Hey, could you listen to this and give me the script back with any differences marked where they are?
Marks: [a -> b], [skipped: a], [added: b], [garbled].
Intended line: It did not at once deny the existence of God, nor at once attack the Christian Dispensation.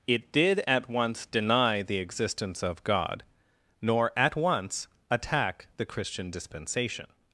It did [skipped: not] at once deny the existence of God, nor at once attack the Christian Dispensation.